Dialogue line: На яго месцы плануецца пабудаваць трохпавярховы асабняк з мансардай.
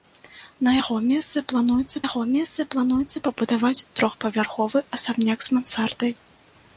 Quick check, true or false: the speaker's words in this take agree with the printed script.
false